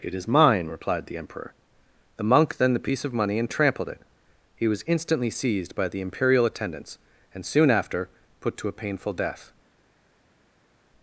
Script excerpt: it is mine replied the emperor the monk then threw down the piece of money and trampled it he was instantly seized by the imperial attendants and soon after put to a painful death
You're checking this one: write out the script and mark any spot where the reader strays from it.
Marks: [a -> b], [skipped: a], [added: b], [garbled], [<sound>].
it is mine replied the emperor the monk then [skipped: threw down] the piece of money and trampled it he was instantly seized by the imperial attendants and soon after put to a painful death